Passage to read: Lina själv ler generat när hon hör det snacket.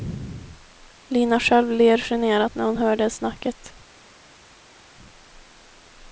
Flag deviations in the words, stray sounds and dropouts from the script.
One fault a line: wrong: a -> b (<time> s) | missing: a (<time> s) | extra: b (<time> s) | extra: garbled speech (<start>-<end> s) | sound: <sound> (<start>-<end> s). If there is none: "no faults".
no faults